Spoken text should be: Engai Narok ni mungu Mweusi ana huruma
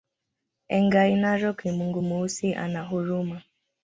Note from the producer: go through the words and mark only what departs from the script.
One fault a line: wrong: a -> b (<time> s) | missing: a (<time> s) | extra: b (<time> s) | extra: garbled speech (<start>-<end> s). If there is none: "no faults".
no faults